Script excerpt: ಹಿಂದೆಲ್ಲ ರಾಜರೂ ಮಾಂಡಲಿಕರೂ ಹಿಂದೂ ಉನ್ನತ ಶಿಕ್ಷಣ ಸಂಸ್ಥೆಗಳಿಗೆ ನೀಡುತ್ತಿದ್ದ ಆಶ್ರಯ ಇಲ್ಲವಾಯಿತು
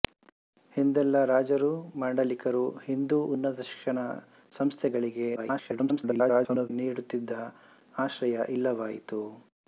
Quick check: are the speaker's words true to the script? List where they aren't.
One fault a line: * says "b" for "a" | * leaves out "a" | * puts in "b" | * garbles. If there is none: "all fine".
* garbles